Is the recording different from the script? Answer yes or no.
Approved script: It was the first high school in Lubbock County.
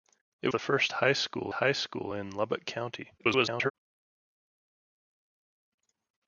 yes